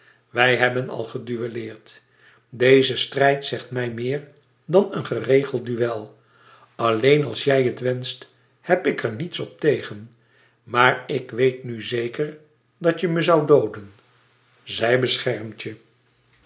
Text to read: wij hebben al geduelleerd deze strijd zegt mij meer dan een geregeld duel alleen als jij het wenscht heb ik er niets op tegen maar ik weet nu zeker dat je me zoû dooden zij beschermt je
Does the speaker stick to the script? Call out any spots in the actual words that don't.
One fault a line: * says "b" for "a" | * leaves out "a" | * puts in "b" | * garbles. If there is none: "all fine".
all fine